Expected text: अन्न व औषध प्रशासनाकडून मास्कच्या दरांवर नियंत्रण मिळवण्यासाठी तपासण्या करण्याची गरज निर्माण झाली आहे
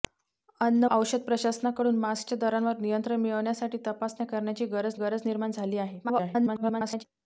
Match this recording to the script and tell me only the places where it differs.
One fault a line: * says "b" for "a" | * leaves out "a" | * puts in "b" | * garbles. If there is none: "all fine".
* leaves out "व"
* puts in "गरज"
* garbles